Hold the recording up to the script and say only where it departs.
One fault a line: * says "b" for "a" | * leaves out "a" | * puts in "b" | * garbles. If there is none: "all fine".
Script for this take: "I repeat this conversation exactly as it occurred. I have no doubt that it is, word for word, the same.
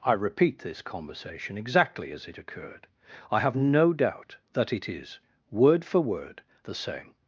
all fine